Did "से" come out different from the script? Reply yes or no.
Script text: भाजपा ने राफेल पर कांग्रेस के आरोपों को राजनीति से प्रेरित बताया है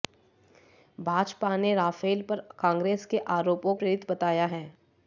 yes